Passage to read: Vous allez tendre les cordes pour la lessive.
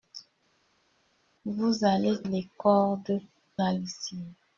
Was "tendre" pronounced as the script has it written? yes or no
no